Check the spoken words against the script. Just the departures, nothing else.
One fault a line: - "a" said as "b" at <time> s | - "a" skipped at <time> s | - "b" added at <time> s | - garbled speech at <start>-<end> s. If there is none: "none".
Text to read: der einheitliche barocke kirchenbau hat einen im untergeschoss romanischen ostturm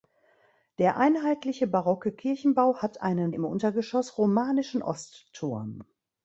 none